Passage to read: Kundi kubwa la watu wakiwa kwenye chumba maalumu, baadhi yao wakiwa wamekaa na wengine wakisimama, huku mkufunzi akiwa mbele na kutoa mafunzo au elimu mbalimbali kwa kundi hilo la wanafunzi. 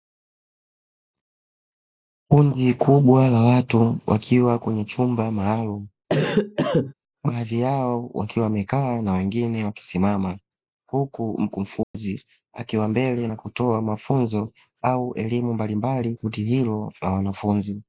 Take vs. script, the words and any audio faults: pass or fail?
fail